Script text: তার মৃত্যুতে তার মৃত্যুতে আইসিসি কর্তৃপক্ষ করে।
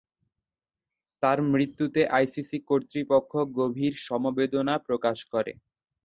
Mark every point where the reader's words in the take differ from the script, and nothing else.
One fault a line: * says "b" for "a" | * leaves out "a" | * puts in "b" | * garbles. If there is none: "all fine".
* says "আইসিসি কর্তৃপক্ষ গভীর সমবেদনা প্রকাশ" for "তার মৃত্যুতে আইসিসি কর্তৃপক্ষ"